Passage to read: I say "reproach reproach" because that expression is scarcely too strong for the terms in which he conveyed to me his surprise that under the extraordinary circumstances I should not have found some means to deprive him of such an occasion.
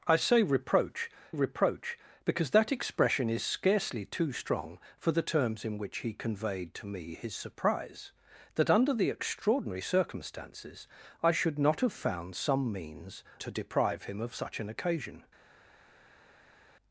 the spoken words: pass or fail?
pass